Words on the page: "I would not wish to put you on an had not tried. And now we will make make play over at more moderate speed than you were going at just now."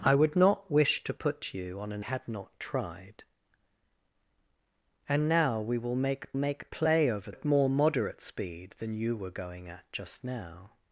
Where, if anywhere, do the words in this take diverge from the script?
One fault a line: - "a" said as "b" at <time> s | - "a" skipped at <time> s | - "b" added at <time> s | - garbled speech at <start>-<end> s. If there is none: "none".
none